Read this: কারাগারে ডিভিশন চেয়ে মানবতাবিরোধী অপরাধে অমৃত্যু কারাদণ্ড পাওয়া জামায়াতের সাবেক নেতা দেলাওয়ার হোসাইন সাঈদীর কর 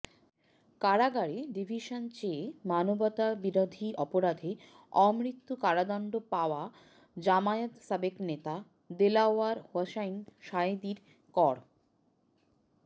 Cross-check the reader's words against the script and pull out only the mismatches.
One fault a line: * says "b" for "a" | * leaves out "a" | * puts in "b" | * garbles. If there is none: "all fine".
all fine